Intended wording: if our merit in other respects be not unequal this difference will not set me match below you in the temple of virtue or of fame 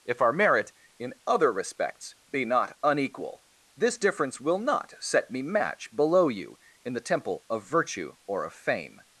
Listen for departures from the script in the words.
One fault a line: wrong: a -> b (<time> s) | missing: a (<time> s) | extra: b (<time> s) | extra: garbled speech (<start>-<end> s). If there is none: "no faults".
no faults